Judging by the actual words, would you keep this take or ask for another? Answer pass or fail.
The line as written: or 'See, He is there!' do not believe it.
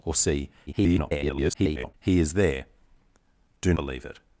fail